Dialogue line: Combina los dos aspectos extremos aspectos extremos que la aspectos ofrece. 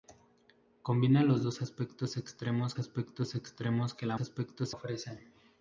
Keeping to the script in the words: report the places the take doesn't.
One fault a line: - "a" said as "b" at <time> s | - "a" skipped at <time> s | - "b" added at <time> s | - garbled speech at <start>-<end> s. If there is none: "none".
none